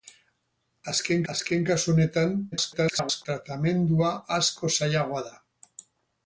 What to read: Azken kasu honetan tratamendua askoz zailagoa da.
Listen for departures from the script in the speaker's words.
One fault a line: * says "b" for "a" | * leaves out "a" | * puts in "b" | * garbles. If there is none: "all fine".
* puts in "azken"
* garbles